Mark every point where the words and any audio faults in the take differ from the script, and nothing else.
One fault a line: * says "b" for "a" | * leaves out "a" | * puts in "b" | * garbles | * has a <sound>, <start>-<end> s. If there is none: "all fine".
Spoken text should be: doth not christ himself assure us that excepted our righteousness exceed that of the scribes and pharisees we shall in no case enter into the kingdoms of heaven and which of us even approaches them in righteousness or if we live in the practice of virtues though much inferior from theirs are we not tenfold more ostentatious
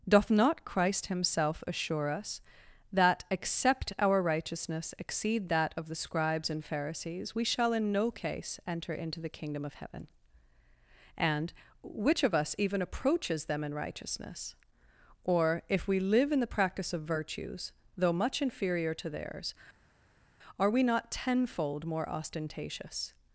* says "except" for "excepted"
* says "kingdom" for "kingdoms"
* says "to" for "from"